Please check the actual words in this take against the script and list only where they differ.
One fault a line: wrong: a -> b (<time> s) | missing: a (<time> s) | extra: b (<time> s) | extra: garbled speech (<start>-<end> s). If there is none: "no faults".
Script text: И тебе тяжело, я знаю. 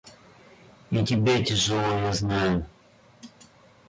no faults